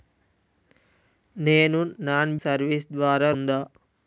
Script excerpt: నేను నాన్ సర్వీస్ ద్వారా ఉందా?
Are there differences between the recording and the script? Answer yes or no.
no